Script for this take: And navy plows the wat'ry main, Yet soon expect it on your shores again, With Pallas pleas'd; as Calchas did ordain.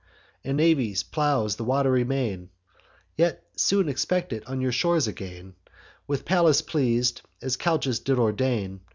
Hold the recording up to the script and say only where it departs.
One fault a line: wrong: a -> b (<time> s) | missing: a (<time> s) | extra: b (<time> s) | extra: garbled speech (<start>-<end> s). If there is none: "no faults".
no faults